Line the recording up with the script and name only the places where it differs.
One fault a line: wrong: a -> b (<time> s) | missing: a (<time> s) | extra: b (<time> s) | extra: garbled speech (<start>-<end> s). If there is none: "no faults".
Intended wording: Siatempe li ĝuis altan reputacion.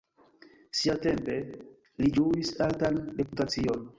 no faults